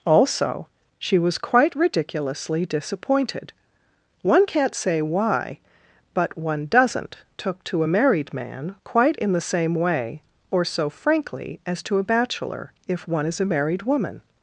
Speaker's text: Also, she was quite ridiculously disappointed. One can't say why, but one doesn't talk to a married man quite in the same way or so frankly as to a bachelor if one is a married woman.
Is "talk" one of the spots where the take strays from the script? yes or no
yes